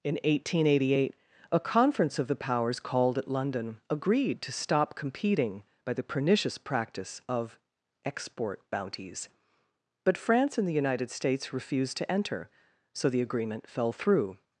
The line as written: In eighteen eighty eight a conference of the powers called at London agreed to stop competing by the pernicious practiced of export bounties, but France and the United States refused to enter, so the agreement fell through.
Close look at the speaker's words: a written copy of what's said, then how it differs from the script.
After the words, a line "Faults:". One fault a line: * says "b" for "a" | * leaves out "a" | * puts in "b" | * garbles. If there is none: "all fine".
In eighteen eighty eight a conference of the powers called at London agreed to stop competing by the pernicious practice of export bounties, but France and the United States refused to enter, so the agreement fell through.
Faults:
* says "practice" for "practiced"